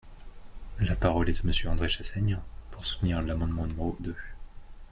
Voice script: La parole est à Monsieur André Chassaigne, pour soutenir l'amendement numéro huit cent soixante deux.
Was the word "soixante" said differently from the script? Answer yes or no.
yes